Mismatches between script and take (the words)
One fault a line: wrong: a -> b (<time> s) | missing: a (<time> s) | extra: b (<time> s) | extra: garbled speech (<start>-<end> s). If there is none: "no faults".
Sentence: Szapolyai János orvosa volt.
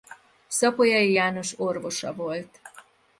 no faults